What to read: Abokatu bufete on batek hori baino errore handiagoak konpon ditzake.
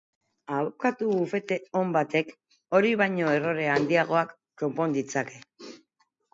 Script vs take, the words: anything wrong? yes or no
no